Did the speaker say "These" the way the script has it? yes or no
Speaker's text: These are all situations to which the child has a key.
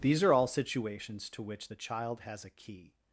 yes